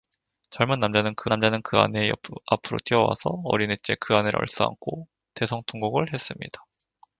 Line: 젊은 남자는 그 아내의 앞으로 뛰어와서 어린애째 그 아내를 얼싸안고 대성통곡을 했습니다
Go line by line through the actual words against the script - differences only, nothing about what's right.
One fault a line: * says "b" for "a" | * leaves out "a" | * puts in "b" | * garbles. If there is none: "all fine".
* puts in "남자는 그"